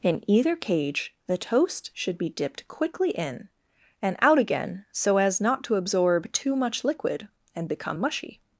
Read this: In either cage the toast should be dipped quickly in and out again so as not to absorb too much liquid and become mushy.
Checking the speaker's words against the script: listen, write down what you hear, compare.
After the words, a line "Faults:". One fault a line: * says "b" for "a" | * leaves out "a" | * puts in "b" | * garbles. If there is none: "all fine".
In either cage the toast should be dipped quickly in and out again so as not to absorb too much liquid and become mushy.
Faults:
all fine